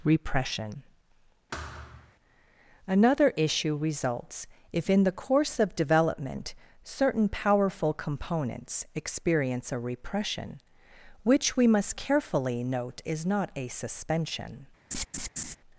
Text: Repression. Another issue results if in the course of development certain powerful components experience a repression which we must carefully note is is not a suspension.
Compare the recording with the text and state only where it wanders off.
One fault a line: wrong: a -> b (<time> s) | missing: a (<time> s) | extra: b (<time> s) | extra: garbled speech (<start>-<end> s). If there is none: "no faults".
missing: is (13.2 s)